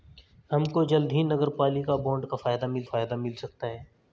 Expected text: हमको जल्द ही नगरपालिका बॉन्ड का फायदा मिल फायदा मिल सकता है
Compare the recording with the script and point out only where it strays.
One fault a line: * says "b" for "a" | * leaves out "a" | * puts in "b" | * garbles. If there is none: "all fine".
all fine